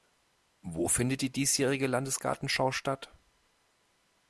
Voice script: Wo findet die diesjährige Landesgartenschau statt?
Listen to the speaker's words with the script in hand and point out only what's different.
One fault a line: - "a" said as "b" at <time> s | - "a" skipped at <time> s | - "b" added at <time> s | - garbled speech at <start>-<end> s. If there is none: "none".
none